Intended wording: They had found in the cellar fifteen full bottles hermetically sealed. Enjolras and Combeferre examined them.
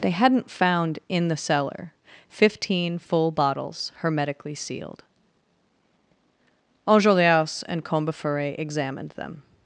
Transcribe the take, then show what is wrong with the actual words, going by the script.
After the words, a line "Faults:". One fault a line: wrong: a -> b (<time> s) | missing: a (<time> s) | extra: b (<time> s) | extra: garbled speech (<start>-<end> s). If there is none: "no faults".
They hadn't found in the cellar fifteen full bottles hermetically sealed. Enjolras and Combeferre examined them.
Faults:
wrong: had -> hadn't (0.1 s)